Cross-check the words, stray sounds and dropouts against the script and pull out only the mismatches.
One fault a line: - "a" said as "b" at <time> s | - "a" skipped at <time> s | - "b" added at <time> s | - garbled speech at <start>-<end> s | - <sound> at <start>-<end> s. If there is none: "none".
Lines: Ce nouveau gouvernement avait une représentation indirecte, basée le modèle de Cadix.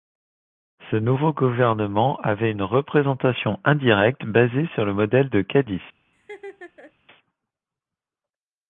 - "sur" added at 4.7 s
- laugh at 6.1-6.9 s